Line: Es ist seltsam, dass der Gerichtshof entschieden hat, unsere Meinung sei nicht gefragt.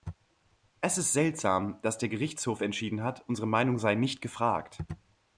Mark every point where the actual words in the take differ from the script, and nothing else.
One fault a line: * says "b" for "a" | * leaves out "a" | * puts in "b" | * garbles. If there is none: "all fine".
all fine